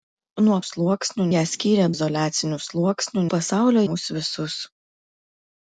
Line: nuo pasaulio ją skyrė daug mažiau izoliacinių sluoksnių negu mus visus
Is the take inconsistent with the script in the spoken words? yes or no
yes